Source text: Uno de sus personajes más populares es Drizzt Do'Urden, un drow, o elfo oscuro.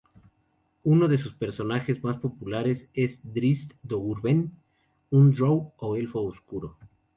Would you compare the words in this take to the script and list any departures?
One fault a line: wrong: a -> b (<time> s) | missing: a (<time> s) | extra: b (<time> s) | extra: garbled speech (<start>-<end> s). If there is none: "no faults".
no faults